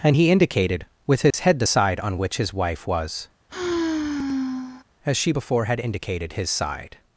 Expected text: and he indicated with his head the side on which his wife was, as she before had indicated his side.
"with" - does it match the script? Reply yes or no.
yes